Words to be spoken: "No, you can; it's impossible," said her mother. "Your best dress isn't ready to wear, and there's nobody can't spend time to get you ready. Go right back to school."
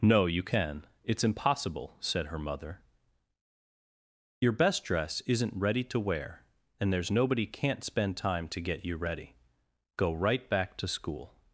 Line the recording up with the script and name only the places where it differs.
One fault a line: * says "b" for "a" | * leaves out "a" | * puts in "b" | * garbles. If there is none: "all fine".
all fine